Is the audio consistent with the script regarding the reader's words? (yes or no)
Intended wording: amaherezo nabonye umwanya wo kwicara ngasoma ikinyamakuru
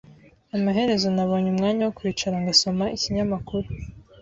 yes